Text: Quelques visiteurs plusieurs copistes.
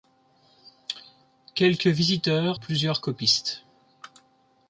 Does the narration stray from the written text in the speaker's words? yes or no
no